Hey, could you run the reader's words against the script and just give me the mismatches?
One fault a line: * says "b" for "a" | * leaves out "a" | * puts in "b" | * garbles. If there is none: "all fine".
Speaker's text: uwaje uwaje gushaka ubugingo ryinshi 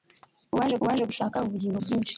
all fine